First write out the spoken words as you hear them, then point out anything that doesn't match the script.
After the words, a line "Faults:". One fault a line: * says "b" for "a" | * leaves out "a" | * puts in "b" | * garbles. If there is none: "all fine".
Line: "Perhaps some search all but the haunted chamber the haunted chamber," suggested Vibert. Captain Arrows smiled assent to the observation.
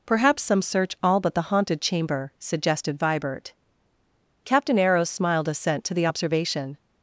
"Perhaps some search all but the haunted chamber," suggested Vibert. Captain Arrows smiled assent to the observation.
Faults:
* leaves out "the haunted chamber"